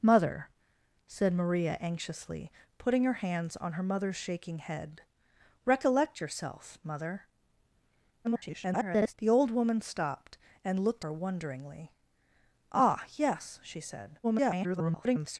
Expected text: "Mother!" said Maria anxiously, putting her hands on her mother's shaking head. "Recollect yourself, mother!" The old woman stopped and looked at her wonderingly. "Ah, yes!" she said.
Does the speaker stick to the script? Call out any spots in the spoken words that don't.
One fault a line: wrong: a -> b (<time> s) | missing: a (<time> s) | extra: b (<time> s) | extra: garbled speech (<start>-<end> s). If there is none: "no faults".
extra: garbled speech (8.2-9.1 s)
missing: at (11.1 s)
extra: garbled speech (14.2-15.4 s)